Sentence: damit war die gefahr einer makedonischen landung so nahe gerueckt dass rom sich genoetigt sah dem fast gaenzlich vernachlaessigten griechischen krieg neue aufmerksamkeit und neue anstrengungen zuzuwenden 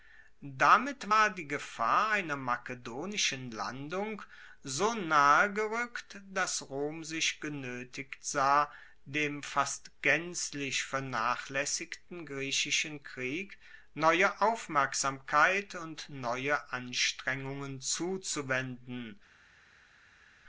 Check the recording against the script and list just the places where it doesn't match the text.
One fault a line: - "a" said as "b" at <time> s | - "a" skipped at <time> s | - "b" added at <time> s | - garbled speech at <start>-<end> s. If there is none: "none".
none